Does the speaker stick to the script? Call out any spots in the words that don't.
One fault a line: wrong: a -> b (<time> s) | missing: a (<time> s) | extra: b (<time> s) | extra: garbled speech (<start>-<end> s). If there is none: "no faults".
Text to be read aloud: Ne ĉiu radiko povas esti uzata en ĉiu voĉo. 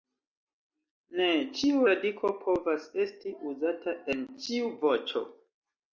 no faults